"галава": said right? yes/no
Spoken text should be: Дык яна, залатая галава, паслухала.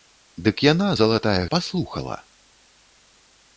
no